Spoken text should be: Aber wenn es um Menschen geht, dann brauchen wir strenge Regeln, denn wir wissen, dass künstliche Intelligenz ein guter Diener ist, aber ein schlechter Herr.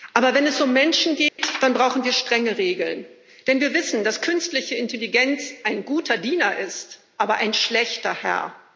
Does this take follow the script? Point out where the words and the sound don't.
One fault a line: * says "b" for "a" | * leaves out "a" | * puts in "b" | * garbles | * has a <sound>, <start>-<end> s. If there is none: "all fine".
* has a dropout, 1.3-1.4 s